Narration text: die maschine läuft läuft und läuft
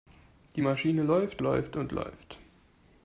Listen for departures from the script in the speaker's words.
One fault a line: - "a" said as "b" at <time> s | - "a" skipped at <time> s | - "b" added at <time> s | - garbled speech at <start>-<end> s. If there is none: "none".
none